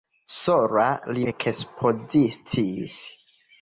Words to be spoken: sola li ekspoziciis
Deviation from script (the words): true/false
false